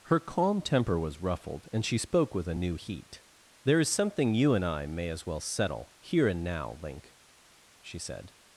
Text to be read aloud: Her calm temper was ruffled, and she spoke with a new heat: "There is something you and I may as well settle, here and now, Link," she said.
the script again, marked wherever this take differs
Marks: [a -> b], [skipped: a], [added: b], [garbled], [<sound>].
Her calm temper was ruffled, and she spoke with a new heat: "There is something you and I may as well settle, here and now, Link," she said.